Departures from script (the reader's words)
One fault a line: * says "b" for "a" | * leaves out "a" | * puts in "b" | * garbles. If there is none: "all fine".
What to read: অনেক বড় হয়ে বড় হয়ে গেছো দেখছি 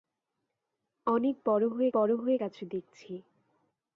all fine